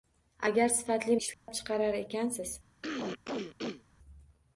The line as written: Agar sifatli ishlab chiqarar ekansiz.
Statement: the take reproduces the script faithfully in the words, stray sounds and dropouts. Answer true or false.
false